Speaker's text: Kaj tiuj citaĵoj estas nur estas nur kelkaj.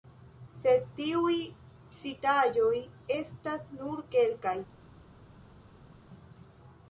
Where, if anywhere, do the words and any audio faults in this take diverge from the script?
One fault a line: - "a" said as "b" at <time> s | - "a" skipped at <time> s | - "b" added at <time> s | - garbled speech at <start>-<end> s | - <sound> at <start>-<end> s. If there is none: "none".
- "Kaj" said as "Sed" at 0.6 s
- "estas nur" skipped at 4.1 s